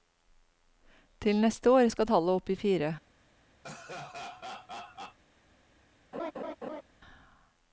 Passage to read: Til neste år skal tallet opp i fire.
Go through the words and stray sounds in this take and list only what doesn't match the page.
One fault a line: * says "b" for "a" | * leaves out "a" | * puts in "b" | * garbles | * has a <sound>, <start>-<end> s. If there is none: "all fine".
* has a laugh, 3.6-5.2 s
* has a laugh, 6.1-6.8 s